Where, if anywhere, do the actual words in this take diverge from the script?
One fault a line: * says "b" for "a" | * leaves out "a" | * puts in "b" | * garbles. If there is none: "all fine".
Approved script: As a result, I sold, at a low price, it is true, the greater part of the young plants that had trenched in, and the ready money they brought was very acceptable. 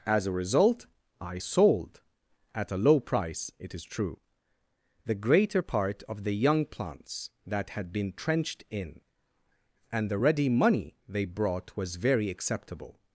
* puts in "been"